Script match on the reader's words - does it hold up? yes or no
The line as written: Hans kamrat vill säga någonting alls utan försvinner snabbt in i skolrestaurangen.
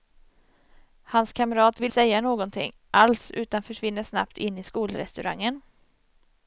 yes